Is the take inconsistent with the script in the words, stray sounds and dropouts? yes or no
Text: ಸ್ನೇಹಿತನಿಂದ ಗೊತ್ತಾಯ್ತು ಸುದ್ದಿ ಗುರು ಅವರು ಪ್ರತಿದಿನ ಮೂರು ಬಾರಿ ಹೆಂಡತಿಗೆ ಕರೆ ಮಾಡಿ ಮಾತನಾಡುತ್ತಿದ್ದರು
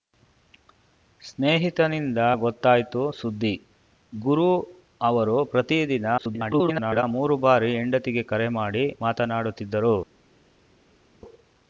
yes